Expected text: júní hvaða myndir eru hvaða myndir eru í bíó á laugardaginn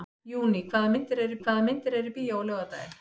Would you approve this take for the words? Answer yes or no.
yes